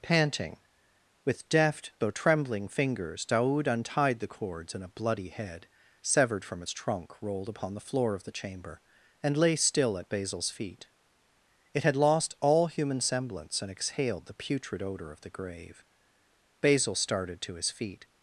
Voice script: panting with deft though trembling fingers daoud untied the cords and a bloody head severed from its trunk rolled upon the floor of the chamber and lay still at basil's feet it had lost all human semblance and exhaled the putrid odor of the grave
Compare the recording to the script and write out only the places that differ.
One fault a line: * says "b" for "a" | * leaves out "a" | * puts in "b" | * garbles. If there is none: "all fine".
* puts in "basil started to his feet"